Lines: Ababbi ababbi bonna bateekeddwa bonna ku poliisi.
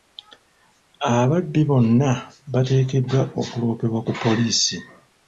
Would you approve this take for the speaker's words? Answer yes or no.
no